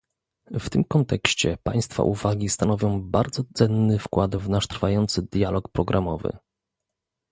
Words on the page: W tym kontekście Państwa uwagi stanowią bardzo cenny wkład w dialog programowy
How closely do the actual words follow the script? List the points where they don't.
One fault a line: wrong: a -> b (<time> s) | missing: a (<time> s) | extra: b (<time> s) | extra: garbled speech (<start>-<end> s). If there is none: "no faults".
extra: nasz trwający (4.5 s)